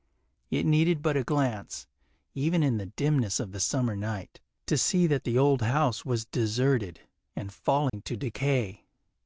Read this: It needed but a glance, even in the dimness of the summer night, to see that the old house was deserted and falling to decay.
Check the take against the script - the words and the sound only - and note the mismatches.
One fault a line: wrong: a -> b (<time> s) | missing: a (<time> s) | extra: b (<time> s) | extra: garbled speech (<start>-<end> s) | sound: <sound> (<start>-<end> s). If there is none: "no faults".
sound: dropout (7.9-7.9 s)